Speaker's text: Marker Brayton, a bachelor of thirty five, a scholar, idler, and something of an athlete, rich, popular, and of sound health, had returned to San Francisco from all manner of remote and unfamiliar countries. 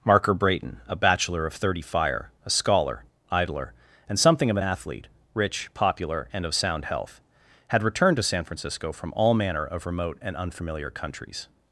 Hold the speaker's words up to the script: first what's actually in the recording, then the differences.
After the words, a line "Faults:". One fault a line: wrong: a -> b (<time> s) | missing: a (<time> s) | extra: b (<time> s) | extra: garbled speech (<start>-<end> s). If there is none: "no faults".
Marker Brayton, a bachelor of thirty fire, a scholar, idler, and something of an athlete, rich, popular, and of sound health, had returned to San Francisco from all manner of remote and unfamiliar countries.
Faults:
wrong: five -> fire (1.8 s)